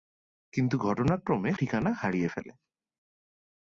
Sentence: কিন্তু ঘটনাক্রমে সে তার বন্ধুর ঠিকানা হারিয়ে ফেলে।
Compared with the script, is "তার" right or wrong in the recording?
wrong